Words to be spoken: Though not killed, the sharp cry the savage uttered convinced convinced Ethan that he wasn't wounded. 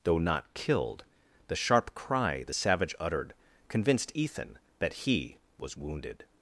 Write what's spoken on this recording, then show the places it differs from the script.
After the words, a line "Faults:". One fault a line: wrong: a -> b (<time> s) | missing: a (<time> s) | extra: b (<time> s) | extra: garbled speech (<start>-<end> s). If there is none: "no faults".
Though not killed, the sharp cry the savage uttered convinced Ethan that he was wounded.
Faults:
missing: convinced (4.1 s)
wrong: wasn't -> was (5.6 s)